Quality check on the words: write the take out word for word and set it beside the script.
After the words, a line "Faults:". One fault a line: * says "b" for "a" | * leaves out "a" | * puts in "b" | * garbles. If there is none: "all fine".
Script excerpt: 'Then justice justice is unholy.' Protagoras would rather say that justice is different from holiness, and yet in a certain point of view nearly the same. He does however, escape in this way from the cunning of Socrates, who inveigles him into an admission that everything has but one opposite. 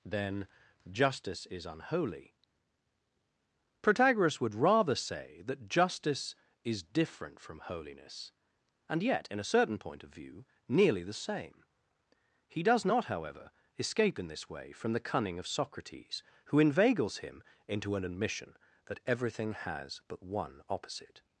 'Then justice is unholy.' Protagoras would rather say that justice is different from holiness, and yet in a certain point of view nearly the same. He does not, however, escape in this way from the cunning of Socrates, who inveigles him into an admission that everything has but one opposite.
Faults:
* leaves out "justice"
* puts in "not"